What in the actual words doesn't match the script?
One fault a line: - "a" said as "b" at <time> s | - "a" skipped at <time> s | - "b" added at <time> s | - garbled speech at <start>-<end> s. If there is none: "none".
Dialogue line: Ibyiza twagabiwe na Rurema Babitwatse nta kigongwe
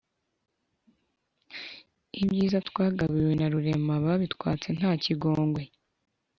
none